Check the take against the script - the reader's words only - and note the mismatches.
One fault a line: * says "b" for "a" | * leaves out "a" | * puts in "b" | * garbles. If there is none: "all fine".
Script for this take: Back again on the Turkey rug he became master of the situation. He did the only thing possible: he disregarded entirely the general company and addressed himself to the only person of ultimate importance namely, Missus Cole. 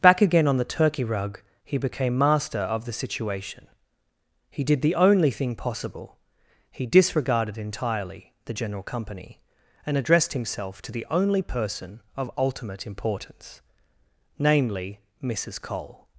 all fine